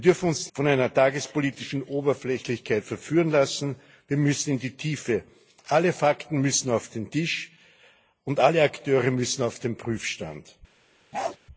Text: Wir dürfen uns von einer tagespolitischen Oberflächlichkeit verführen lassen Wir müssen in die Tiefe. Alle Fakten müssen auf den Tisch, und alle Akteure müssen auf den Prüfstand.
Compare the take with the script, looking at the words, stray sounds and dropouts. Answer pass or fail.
fail